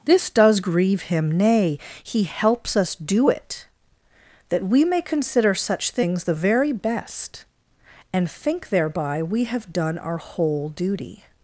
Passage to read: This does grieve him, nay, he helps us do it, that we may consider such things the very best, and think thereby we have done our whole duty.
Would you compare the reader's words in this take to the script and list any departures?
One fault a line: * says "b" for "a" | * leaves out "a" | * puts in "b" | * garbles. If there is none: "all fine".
all fine